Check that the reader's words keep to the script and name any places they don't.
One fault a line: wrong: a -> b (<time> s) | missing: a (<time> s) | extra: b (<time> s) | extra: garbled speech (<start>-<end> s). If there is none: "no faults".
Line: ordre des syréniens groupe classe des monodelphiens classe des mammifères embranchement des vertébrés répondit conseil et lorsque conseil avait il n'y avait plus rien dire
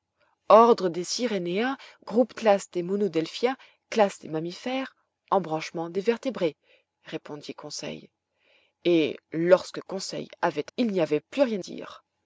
no faults